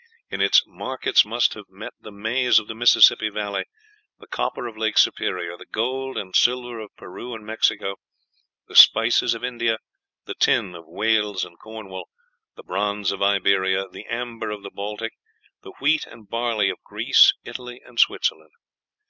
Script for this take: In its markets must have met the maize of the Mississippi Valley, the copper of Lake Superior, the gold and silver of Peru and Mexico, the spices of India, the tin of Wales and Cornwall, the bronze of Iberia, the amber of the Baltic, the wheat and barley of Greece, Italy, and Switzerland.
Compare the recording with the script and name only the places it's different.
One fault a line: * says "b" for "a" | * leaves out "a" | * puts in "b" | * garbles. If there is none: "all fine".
all fine